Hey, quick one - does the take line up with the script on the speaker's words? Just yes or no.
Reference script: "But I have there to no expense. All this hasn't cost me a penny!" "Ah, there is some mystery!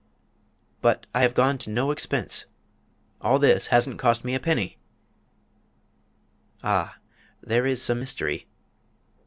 no